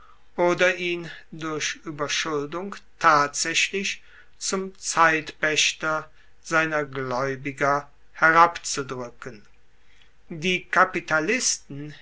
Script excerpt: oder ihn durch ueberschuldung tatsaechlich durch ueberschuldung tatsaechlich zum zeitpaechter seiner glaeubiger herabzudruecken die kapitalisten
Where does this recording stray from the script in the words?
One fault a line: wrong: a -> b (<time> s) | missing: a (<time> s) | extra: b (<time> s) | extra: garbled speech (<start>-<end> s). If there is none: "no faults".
missing: durch ueberschuldung tatsaechlich (4.0 s)